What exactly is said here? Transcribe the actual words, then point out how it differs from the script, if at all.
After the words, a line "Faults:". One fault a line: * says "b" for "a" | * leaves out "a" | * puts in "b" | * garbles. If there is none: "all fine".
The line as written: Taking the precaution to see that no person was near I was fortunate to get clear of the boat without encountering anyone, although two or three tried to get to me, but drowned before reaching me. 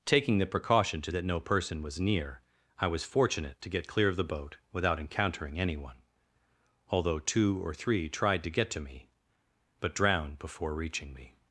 Taking the precaution to that no person was near I was fortunate to get clear of the boat without encountering anyone, although two or three tried to get to me, but drowned before reaching me.
Faults:
* leaves out "see"